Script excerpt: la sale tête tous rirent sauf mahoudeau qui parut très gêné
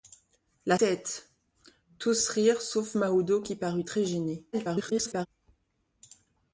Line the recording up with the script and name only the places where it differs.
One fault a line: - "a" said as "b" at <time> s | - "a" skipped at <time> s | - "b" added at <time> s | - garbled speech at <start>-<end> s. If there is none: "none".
- "sale" skipped at 0.8 s
- garbled speech at 4.5-5.3 s